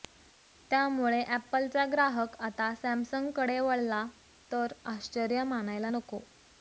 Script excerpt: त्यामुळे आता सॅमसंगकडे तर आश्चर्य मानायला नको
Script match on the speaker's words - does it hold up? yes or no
no